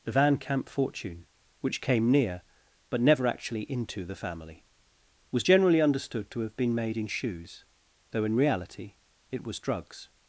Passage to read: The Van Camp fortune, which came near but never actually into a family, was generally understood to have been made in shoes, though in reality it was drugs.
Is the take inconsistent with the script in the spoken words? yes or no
yes